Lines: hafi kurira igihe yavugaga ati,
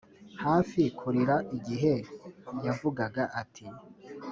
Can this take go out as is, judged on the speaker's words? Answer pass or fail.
pass